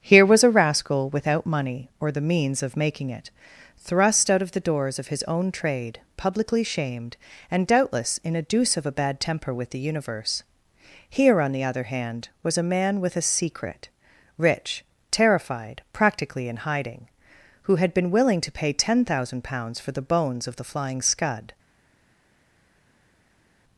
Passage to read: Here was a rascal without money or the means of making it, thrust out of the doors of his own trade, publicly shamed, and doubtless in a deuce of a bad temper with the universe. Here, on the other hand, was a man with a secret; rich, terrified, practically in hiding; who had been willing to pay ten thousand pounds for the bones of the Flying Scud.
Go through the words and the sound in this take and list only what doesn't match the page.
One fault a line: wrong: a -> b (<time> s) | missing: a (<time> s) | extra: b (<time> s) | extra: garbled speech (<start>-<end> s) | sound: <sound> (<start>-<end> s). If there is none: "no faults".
no faults